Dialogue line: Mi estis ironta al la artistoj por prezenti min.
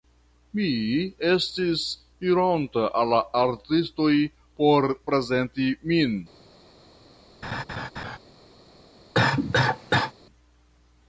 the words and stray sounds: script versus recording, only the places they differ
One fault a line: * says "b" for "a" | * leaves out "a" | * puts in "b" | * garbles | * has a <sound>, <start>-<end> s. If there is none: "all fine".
* has a laugh, 7.4-8.2 s
* has a cough, 9.1-10.1 s